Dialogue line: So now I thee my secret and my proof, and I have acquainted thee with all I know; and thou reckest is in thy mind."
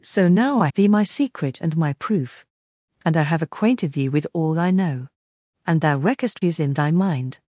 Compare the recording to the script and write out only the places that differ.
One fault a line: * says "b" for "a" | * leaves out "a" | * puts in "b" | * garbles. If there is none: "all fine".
all fine